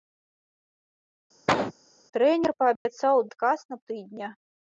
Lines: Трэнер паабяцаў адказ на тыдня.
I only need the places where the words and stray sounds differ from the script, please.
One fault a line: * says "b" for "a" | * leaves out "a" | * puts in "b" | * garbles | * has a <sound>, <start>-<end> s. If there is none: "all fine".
* has a cough, 1.5-1.7 s
* has a dropout, 2.8-2.9 s